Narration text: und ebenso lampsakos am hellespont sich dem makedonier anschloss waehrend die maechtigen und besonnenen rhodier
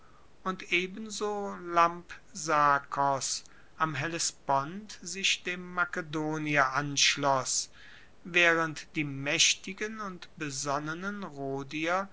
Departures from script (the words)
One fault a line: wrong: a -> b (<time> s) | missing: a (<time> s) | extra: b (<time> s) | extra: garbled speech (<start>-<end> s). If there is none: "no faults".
no faults